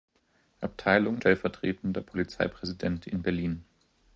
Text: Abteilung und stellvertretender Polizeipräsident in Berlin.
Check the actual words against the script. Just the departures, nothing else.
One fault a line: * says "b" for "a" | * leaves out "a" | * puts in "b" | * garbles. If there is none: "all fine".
* leaves out "und"